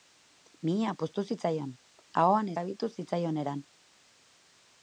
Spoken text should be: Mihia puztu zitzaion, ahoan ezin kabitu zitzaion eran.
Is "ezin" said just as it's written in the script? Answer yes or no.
no